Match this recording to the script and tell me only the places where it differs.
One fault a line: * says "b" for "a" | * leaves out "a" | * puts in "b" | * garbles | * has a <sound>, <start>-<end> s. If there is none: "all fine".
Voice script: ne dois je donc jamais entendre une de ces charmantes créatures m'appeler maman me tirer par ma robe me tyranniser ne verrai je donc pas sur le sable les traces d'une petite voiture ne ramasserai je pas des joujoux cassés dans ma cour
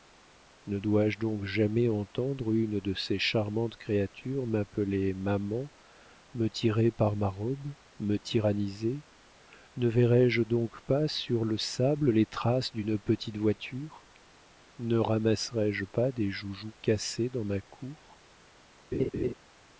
* has a laugh, 18.9-19.3 s